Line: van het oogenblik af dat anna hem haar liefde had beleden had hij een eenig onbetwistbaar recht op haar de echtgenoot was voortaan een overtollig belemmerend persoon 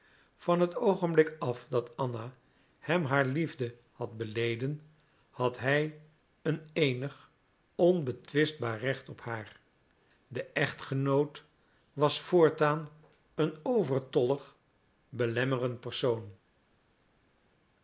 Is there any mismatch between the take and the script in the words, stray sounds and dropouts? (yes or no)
no